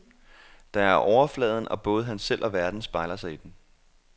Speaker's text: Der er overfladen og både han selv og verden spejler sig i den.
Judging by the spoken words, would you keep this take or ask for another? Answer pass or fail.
pass